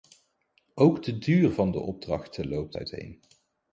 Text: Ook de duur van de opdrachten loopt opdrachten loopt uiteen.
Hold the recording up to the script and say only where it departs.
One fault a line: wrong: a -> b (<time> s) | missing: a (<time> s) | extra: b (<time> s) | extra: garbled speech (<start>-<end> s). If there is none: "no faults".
missing: opdrachten loopt (2.8 s)